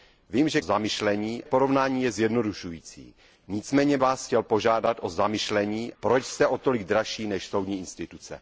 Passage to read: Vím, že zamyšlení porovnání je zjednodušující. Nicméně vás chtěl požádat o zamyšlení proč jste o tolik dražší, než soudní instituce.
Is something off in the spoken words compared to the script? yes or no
no